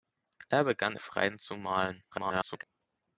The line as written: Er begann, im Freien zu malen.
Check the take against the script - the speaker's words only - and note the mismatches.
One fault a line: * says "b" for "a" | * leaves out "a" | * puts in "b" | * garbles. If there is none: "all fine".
* leaves out "im"
* garbles